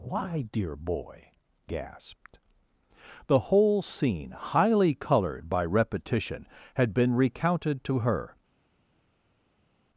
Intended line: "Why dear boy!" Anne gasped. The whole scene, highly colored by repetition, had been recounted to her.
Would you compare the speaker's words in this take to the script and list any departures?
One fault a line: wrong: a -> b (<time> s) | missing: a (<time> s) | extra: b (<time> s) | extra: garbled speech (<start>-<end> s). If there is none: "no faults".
missing: Anne (1.3 s)